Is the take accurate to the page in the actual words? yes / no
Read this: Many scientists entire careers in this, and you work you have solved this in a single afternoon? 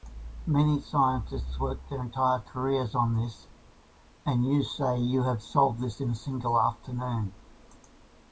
no